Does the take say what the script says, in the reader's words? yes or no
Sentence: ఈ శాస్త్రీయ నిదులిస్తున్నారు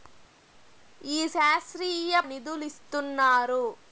yes